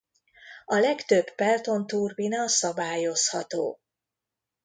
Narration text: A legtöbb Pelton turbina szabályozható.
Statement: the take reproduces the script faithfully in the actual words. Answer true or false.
true